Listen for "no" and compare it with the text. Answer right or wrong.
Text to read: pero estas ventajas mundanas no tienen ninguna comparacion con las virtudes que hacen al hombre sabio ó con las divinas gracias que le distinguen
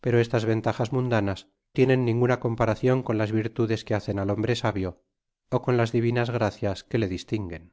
wrong